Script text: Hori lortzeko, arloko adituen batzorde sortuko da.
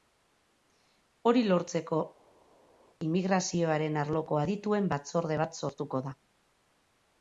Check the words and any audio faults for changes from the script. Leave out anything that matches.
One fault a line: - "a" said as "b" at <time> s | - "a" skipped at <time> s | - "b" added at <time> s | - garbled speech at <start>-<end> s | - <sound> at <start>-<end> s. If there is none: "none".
- "immigrazioaren" added at 3.1 s
- "bat" added at 5.5 s